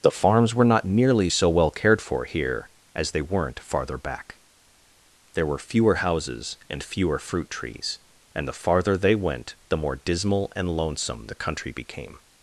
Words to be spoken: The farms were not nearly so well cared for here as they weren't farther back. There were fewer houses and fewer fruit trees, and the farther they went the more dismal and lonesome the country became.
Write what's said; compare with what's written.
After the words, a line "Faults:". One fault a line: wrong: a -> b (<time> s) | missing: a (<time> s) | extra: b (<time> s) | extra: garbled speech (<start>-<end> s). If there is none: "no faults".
The farms were not nearly so well cared for here as they weren't farther back. There were fewer houses and fewer fruit trees, and the farther they went the more dismal and lonesome the country became.
Faults:
no faults